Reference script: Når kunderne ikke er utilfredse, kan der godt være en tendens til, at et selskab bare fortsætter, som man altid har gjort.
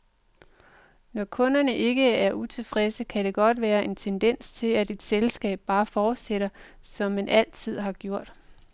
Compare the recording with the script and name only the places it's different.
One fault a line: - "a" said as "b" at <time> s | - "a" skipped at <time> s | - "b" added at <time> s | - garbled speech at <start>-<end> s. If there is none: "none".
none